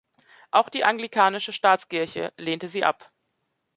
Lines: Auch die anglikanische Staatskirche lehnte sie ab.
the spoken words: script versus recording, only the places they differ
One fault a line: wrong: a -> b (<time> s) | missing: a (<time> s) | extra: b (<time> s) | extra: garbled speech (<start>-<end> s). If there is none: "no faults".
no faults